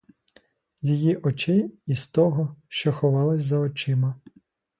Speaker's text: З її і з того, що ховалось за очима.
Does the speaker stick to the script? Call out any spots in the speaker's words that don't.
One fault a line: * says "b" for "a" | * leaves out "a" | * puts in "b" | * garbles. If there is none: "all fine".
* puts in "очей"